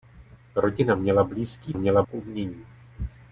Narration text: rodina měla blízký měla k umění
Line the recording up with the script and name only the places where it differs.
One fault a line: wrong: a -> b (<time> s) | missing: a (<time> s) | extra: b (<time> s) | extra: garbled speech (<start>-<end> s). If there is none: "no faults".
no faults